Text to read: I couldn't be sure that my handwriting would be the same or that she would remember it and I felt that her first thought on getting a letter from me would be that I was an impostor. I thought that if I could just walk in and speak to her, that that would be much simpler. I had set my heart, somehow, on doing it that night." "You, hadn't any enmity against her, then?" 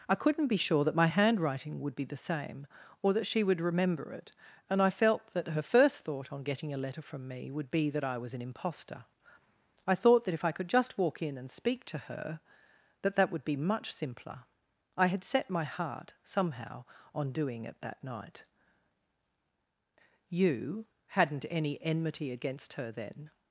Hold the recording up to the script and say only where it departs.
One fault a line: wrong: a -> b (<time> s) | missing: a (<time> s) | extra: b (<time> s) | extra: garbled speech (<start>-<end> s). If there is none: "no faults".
no faults